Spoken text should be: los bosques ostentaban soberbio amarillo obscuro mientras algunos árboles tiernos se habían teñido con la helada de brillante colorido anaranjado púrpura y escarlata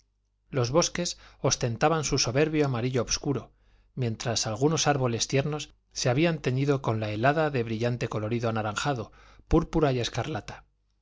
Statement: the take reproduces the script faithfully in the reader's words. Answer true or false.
false